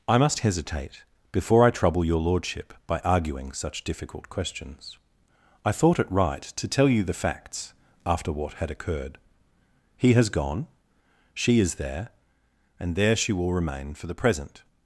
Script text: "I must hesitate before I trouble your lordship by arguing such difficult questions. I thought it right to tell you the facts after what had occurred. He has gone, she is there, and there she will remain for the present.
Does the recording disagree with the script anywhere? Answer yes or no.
no